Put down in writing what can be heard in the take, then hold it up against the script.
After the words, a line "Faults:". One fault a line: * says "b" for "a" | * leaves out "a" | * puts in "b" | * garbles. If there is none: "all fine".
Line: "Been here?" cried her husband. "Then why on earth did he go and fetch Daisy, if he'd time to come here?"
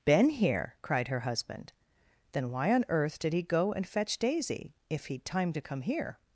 "Been here?" cried her husband. "Then why on earth did he go and fetch Daisy, if he'd time to come here?"
Faults:
all fine